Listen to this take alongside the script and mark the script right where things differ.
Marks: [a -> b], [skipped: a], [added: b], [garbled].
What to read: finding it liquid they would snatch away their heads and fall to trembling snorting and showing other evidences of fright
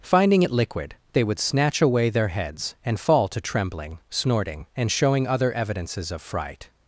finding it liquid they would snatch away their heads and fall to trembling snorting and showing other evidences of fright